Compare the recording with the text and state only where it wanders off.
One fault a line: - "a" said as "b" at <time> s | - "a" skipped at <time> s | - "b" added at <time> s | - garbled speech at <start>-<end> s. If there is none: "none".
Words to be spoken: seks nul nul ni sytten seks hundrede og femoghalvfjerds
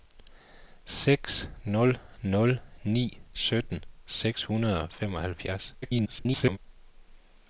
- garbled speech at 5.8-6.6 s